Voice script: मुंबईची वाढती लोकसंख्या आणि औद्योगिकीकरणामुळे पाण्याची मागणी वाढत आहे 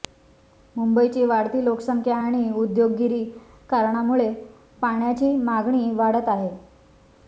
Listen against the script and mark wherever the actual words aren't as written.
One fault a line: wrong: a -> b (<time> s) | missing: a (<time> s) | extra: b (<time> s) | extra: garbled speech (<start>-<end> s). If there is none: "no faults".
no faults